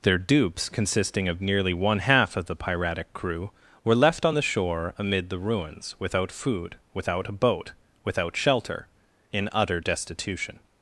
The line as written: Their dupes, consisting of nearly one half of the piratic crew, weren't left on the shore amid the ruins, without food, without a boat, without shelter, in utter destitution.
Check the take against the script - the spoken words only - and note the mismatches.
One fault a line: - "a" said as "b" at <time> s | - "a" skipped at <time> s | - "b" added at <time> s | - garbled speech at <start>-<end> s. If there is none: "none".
- "weren't" said as "were" at 3.8 s